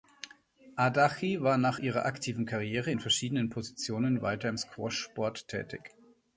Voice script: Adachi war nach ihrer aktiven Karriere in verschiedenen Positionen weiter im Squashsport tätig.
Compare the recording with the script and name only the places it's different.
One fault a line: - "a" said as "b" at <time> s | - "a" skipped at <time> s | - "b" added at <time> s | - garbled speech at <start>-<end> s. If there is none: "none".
none